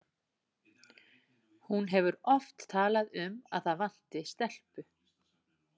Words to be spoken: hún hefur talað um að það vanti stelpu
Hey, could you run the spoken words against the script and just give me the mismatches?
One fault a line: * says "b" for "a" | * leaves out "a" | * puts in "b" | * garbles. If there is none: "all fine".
* puts in "oft"